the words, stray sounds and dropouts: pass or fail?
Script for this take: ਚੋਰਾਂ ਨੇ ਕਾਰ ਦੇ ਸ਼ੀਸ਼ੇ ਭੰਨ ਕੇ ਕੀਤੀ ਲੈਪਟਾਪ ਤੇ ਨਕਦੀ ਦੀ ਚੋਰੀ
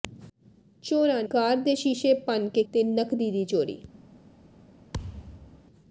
fail